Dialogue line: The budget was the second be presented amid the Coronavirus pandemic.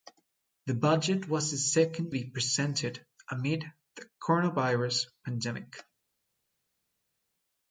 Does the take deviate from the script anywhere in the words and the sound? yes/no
no